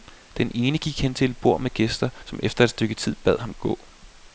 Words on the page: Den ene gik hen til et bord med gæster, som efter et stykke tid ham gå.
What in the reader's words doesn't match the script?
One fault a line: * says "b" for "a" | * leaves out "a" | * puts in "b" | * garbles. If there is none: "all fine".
* puts in "bad"